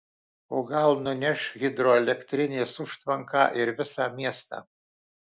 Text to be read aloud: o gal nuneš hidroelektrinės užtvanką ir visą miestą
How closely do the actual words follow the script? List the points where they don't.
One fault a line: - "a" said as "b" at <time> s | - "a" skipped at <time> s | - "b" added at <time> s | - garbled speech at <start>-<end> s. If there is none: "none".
none